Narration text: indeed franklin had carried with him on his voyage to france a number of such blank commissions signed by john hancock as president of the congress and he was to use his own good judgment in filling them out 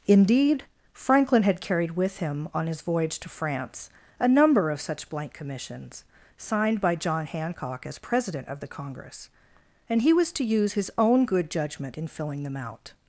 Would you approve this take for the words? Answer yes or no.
yes